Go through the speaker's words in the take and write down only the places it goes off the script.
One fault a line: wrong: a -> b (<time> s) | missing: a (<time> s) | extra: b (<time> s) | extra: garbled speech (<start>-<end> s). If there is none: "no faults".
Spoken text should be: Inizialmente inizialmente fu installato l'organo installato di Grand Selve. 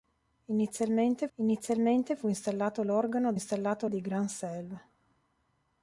no faults